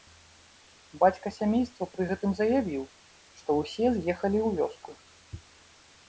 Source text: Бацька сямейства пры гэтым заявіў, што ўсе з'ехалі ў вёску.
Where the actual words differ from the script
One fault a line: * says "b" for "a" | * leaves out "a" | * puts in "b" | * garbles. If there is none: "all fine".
all fine